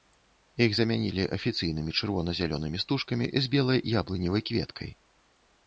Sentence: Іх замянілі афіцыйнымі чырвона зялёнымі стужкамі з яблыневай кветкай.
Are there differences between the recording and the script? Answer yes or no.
yes